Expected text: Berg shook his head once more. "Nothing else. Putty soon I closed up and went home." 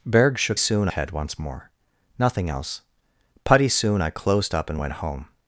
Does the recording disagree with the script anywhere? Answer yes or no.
yes